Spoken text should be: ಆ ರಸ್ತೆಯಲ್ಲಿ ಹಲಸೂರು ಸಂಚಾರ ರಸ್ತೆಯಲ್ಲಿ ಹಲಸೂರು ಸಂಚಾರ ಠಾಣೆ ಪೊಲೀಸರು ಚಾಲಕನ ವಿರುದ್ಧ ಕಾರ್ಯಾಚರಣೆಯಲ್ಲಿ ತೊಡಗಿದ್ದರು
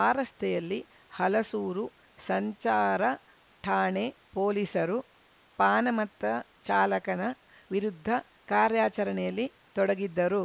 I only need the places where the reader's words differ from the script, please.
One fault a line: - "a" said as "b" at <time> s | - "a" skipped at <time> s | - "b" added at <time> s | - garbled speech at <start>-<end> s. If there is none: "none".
- "ರಸ್ತೆಯಲ್ಲಿ ಹಲಸೂರು ಸಂಚಾರ" skipped at 3.0 s
- "ಪಾನಮತ್ತ" added at 5.6 s